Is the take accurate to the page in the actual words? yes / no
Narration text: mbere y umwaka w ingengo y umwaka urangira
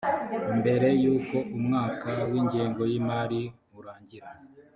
no